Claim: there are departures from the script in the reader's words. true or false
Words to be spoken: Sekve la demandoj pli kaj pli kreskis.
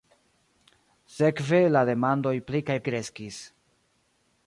true